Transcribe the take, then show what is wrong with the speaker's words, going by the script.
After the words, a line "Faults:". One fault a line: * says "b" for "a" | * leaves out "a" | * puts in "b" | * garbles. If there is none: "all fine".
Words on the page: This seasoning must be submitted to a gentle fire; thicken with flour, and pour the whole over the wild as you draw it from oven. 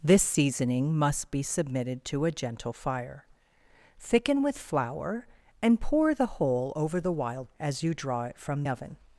This seasoning must be submitted to a gentle fire; thicken with flour, and pour the whole over the wild as you draw it from oven.
Faults:
all fine